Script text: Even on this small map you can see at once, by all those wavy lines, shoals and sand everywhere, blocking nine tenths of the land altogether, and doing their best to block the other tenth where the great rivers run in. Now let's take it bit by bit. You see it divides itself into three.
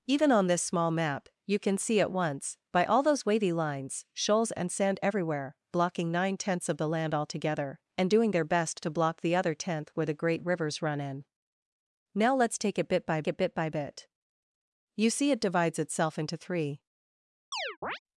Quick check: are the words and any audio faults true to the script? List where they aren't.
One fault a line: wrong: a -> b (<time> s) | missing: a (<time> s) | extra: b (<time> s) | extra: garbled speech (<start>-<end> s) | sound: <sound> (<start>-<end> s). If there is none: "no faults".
extra: it bit by (13.3 s)
sound: chirp (17.5-18.0 s)